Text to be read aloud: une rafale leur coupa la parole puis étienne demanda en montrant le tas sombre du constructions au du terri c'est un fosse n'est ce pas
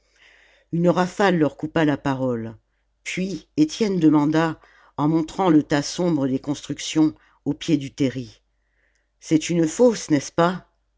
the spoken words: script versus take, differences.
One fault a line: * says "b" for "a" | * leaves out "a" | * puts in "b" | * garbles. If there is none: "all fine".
* says "des" for "du"
* puts in "pied"
* says "une" for "un"